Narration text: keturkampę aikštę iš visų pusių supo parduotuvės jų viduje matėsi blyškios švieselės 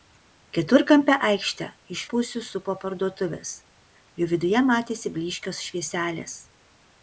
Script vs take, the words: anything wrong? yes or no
yes